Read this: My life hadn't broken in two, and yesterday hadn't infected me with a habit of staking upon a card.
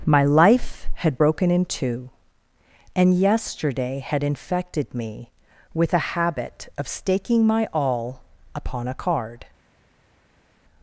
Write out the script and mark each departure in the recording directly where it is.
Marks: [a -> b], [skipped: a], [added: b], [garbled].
My life [hadn't -> had] broken in two, and yesterday [hadn't -> had] infected me with a habit of staking [added: my all] upon a card.